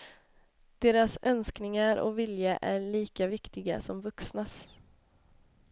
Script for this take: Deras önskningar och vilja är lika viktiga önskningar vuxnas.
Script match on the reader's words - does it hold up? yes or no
no